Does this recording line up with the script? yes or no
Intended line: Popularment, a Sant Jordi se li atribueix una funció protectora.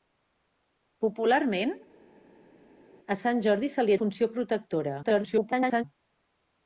no